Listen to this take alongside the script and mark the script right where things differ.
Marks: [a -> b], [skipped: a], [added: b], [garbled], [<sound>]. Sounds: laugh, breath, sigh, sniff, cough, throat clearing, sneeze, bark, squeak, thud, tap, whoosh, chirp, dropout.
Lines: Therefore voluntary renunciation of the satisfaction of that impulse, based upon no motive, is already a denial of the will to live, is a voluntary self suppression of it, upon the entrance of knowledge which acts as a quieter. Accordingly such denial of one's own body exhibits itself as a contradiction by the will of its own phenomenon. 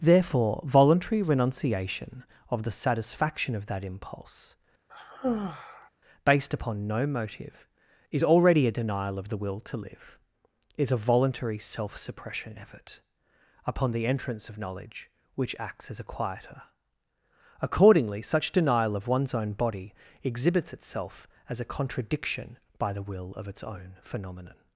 Therefore voluntary renunciation of the satisfaction of that impulse, [sigh] based upon no motive, is already a denial of the will to live, is a voluntary self suppression [of it, -> effort] upon the entrance of knowledge which acts as a quieter. Accordingly such denial of one's own body exhibits itself as a contradiction by the will of its own phenomenon.